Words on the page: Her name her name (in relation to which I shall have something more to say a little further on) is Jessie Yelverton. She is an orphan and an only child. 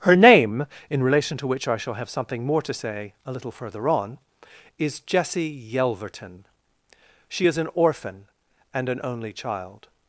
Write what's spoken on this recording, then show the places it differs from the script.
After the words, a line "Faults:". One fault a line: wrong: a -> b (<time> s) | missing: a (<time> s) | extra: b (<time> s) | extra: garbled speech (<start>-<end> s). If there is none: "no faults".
Her name (in relation to which I shall have something more to say a little further on) is Jessie Yelverton. She is an orphan and an only child.
Faults:
missing: her name (0.7 s)